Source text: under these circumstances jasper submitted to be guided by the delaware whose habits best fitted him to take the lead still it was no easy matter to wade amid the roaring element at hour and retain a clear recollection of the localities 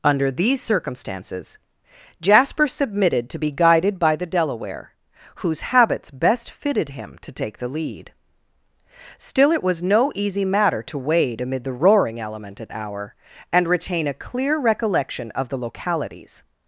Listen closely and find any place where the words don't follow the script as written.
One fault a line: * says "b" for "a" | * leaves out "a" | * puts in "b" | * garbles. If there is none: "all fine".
all fine